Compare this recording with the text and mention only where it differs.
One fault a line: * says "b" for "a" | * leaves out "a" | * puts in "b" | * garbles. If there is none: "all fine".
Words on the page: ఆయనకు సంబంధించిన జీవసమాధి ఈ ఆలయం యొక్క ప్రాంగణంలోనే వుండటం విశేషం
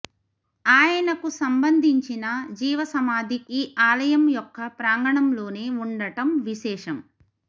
all fine